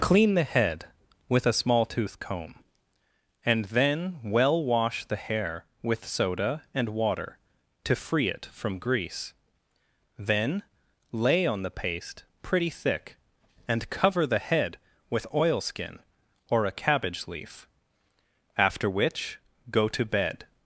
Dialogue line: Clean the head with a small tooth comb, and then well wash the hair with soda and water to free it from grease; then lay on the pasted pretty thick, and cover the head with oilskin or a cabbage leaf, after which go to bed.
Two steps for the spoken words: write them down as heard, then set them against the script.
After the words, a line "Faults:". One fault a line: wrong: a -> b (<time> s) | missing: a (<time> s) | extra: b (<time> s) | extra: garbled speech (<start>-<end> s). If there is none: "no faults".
Clean the head with a small tooth comb, and then well wash the hair with soda and water to free it from grease; then lay on the paste pretty thick, and cover the head with oilskin or a cabbage leaf, after which go to bed.
Faults:
wrong: pasted -> paste (11.8 s)